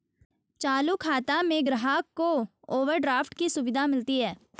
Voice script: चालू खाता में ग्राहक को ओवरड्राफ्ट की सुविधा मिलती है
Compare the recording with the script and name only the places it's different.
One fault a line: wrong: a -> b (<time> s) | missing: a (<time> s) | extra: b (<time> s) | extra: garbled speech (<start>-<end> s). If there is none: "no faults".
no faults